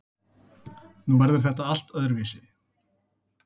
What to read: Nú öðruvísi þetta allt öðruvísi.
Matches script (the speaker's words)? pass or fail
fail